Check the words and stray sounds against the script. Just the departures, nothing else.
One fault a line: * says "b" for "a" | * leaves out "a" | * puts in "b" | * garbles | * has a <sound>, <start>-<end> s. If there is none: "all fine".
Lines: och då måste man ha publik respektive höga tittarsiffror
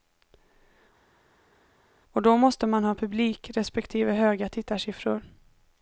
all fine